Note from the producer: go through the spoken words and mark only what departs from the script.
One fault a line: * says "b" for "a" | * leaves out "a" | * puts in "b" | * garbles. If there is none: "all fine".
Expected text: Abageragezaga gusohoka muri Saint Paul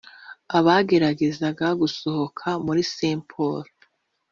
all fine